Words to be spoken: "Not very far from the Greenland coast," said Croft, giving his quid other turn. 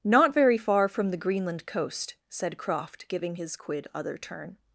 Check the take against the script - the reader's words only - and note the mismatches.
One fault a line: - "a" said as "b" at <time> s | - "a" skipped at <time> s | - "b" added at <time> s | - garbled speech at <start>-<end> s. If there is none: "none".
none